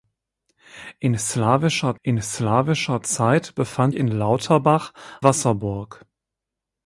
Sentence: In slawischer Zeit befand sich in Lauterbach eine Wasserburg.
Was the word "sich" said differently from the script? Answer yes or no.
yes